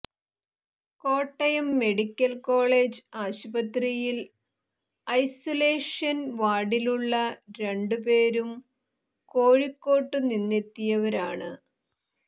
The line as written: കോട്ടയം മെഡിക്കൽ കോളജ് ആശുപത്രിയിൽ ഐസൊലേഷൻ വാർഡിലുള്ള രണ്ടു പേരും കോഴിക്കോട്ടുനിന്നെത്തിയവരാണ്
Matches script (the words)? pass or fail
pass